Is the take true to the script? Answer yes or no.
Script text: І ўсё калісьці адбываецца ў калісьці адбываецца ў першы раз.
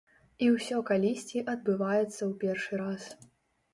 no